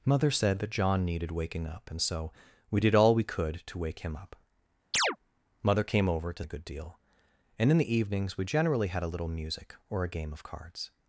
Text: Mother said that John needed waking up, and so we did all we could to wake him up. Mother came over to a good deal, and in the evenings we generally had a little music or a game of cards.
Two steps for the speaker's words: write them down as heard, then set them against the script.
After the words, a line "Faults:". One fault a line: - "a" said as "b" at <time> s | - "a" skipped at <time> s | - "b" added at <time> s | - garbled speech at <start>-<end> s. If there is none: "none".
Mother said that John needed waking up, and so we did all we could to wake him up. Mother came over to a good deal, and in the evenings we generally had a little music or a game of cards.
Faults:
none